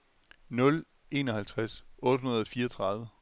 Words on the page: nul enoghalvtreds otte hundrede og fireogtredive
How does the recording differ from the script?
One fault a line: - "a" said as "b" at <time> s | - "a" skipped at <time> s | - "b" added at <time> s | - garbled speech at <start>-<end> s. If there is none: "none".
none